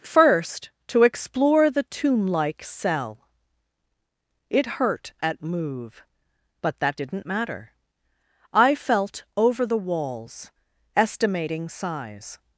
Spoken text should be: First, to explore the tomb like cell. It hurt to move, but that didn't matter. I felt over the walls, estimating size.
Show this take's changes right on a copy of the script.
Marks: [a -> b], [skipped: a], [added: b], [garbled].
First, to explore the tomb like cell. It hurt [to -> at] move, but that didn't matter. I felt over the walls, estimating size.